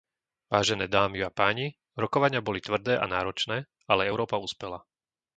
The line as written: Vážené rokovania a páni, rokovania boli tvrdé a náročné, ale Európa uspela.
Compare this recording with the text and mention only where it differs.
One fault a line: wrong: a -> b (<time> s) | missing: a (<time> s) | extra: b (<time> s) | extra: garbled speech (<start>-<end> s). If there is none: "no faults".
wrong: rokovania -> dámy (0.9 s)